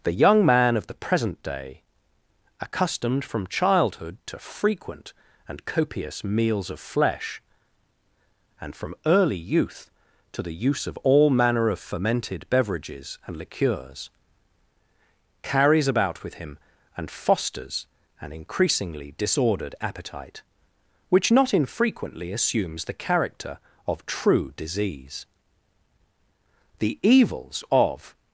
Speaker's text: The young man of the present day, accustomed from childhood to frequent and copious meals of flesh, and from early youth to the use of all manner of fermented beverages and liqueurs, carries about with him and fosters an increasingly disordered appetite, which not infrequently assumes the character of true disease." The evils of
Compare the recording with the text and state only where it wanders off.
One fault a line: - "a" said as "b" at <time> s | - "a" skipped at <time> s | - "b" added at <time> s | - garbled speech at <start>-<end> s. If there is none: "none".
none